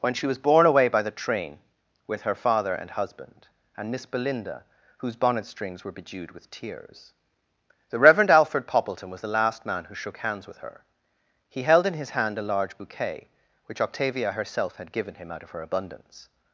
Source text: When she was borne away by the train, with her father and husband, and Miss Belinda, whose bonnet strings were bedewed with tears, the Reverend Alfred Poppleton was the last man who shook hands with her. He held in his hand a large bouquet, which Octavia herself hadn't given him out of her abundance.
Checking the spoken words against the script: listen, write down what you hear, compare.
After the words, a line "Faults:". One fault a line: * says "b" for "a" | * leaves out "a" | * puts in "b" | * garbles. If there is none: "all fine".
When she was borne away by the train, with her father and husband, and Miss Belinda, whose bonnet strings were bedewed with tears, the Reverend Alfred Poppleton was the last man who shook hands with her. He held in his hand a large bouquet, which Octavia herself had given him out of her abundance.
Faults:
* says "had" for "hadn't"